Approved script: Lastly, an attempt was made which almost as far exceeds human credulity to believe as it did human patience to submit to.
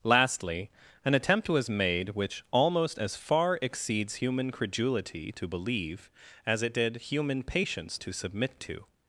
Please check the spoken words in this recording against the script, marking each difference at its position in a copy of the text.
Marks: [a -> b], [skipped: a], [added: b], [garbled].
Lastly, an attempt was made which almost as far exceeds human credulity to believe as it did human patience to submit to.